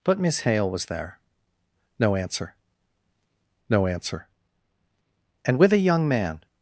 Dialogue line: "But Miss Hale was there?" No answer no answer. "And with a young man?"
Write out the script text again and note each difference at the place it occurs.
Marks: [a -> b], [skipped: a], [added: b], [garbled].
"But Miss Hale was there?" No answer no answer. "And with a young man?"